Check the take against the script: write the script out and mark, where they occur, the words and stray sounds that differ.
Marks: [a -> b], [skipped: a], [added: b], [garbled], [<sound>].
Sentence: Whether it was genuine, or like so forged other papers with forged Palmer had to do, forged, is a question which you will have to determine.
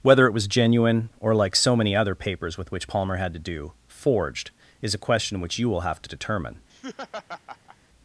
Whether it was genuine, or like so [forged -> many] other papers with [forged -> which] Palmer had to do, forged, is a question which you will have to determine. [laugh]